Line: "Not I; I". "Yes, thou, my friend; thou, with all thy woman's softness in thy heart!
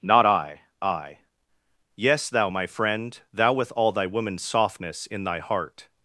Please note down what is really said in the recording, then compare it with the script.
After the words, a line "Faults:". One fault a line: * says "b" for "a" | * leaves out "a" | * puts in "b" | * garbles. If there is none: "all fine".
"Not I; I". "Yes, thou, my friend; thou, with all thy woman's softness in thy heart!
Faults:
all fine